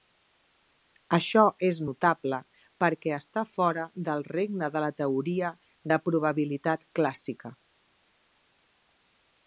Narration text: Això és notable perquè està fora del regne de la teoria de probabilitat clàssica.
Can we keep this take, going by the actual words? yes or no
yes